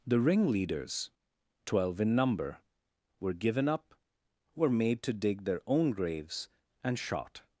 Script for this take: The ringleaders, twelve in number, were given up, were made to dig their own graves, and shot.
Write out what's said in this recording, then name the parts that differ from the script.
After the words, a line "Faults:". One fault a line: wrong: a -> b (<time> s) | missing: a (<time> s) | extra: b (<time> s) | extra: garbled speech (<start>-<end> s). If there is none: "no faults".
The ringleaders, twelve in number, were given up, were made to dig their own graves, and shot.
Faults:
no faults